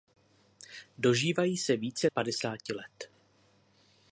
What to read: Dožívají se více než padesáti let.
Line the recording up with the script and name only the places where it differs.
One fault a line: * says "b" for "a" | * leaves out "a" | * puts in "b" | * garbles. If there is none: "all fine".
* leaves out "než"